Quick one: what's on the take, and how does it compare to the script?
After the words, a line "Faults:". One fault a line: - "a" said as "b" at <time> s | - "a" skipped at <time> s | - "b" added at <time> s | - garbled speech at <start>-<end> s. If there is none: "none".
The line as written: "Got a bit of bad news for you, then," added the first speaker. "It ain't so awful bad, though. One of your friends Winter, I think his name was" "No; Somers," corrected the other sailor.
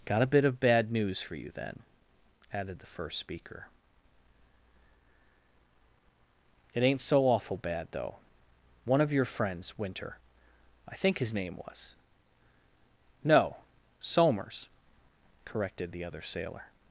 "Got a bit of bad news for you, then," added the first speaker. "It ain't so awful bad, though. One of your friends Winter, I think his name was" "No; Somers," corrected the other sailor.
Faults:
none